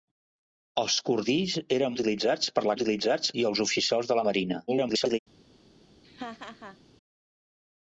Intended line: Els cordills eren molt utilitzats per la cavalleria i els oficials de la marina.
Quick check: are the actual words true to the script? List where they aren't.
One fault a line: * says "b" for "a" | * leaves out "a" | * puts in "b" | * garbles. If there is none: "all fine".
* leaves out "molt"
* says "utilitzats" for "cavalleria"
* garbles